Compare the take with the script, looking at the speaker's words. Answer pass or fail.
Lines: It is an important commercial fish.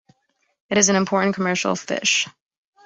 pass